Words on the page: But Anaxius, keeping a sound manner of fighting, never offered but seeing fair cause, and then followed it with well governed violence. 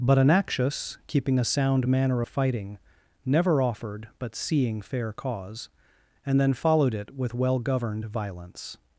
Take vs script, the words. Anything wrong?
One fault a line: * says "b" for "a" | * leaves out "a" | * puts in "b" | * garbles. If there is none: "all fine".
all fine